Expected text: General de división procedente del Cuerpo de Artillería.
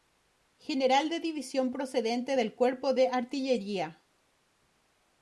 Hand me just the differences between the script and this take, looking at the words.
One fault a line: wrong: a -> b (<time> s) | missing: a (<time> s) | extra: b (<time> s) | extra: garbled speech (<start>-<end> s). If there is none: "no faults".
no faults